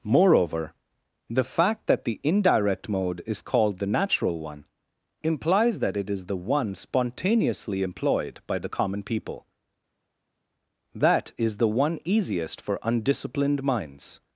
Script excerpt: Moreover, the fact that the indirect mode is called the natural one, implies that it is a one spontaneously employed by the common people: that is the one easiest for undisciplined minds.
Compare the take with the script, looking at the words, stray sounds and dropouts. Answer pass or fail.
fail